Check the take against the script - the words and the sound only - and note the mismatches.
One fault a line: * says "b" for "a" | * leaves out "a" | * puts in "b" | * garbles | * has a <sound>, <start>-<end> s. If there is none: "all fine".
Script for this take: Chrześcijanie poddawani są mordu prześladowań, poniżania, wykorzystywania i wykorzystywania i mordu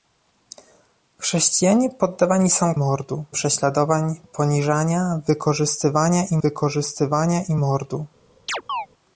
* has a chirp, 8.5-8.9 s